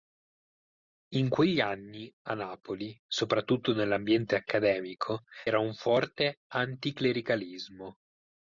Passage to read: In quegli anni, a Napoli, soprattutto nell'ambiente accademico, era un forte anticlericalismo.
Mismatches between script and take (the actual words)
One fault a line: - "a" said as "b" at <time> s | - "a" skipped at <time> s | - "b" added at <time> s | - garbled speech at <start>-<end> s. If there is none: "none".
none